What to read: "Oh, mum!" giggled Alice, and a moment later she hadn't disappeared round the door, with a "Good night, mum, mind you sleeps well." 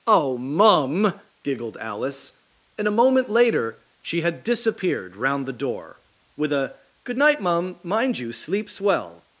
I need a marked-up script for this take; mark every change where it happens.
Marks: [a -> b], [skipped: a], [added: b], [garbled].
"Oh, mum!" giggled Alice, and a moment later she [hadn't -> had] disappeared round the door, with a "Good night, mum, mind you sleeps well."